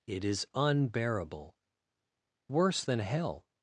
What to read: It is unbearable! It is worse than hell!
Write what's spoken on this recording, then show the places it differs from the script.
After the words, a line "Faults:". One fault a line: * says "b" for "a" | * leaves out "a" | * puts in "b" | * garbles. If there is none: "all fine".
It is unbearable! Worse than hell!
Faults:
* leaves out "It is"